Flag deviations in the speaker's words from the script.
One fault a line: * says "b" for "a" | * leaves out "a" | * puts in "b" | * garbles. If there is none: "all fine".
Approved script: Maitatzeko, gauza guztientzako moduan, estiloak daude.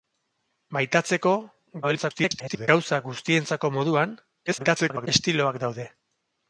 * garbles
* garbles